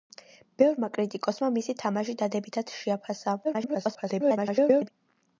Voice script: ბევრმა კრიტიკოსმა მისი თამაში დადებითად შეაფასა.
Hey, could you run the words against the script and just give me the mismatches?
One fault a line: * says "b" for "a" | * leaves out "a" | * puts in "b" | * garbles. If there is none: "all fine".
* garbles